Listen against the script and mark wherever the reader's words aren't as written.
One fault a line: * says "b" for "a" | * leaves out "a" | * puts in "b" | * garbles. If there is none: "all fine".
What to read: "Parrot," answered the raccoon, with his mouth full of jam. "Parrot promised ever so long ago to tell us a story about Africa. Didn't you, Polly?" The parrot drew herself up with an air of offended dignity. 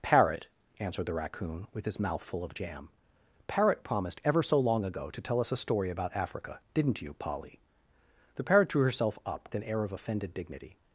* leaves out "with"